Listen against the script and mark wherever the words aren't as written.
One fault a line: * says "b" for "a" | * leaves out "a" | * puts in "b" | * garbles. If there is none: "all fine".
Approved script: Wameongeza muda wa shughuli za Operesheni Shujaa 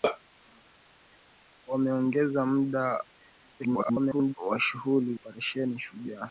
* garbles
* leaves out "za"